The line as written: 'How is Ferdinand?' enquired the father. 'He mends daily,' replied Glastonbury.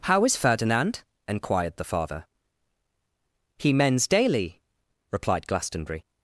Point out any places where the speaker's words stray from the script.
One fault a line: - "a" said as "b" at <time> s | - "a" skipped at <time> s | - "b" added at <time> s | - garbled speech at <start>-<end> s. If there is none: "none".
none